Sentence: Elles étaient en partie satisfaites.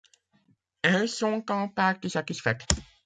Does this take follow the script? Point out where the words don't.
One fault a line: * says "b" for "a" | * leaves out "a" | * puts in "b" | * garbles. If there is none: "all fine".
* says "sont" for "étaient"